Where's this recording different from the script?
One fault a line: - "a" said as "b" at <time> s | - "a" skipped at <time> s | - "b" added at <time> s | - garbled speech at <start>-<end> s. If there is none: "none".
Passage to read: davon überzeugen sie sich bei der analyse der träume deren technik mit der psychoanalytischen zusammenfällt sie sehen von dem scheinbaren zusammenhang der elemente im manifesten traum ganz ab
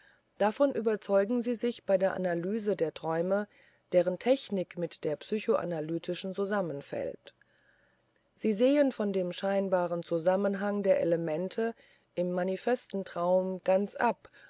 none